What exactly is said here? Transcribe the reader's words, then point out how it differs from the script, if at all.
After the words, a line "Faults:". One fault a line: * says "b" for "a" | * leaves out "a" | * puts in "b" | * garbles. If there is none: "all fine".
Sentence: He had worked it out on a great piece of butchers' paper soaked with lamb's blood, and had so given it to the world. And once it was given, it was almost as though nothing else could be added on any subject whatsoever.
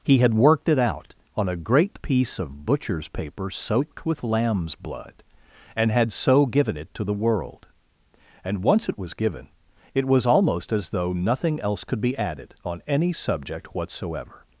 He had worked it out on a great piece of butchers' paper soaked with lamb's blood, and had so given it to the world. And once it was given, it was almost as though nothing else could be added on any subject whatsoever.
Faults:
all fine